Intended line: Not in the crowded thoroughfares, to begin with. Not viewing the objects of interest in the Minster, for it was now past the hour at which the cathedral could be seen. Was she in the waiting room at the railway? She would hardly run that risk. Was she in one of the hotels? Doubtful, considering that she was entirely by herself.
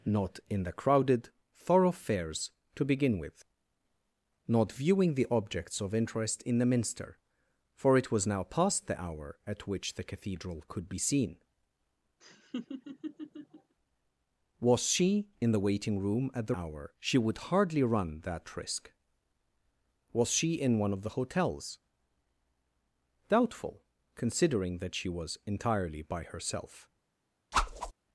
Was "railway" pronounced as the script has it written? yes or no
no